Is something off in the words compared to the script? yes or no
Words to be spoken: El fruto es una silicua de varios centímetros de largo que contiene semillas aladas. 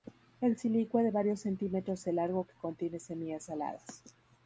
yes